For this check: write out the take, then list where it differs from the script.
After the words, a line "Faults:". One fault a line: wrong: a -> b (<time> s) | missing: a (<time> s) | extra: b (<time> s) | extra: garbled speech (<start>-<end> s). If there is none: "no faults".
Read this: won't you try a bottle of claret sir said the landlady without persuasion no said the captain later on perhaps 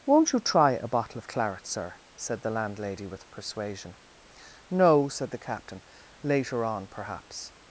won't you try a bottle of claret sir said the landlady with persuasion no said the captain later on perhaps
Faults:
wrong: without -> with (3.1 s)